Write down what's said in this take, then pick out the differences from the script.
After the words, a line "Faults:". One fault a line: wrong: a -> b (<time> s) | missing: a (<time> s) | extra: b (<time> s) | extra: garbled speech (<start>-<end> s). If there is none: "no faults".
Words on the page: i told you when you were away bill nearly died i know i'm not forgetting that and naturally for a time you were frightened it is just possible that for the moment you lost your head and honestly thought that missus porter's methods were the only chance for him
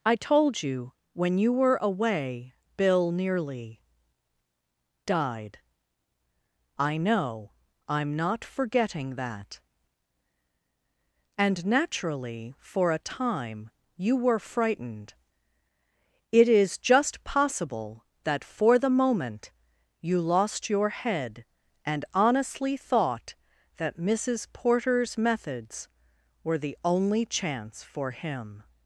i told you when you were away bill nearly died i know i'm not forgetting that and naturally for a time you were frightened it is just possible that for the moment you lost your head and honestly thought that missus porter's methods were the only chance for him
Faults:
no faults